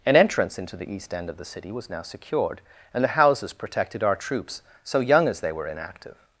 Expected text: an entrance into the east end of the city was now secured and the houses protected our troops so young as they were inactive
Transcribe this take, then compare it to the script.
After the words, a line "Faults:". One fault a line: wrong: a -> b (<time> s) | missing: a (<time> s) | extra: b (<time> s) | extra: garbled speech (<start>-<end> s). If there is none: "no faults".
an entrance into the east end of the city was now secured and the houses protected our troops so young as they were inactive
Faults:
no faults